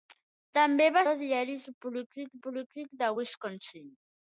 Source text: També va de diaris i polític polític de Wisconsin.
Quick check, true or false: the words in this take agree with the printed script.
true